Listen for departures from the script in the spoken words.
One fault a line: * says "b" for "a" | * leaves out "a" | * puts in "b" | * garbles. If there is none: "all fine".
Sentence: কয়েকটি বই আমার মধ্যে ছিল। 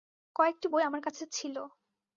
* says "কাছে" for "মধ্যে"